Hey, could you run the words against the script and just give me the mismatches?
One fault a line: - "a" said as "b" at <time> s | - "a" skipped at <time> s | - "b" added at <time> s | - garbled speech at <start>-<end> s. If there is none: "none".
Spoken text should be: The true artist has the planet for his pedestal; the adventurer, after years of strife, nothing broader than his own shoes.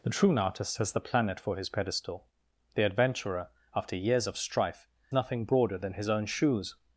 none